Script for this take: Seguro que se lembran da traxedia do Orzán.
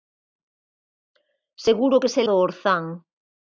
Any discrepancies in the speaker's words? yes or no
yes